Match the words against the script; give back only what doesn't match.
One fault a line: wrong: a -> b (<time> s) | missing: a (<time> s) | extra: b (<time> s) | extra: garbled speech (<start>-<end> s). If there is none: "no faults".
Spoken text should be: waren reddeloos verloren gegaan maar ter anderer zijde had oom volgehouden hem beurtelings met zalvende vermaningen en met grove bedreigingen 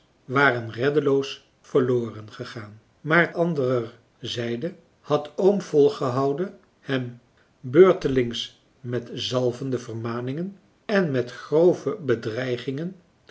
missing: ter (3.3 s)